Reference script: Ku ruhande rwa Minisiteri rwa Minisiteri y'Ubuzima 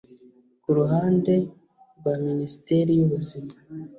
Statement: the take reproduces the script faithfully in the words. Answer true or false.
false